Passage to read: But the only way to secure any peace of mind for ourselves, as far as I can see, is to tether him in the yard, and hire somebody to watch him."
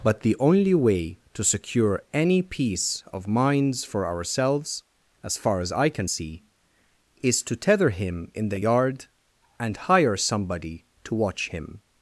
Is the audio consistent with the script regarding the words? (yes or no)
no